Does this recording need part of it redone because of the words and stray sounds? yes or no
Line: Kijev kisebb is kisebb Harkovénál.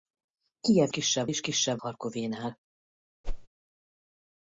yes